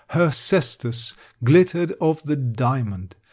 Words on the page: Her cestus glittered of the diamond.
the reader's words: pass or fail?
pass